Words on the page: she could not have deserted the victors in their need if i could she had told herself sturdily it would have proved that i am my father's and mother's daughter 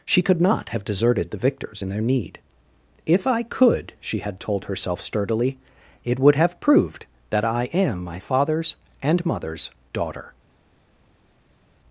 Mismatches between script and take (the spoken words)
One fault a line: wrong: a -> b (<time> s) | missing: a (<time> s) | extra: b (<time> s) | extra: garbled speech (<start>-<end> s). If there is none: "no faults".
no faults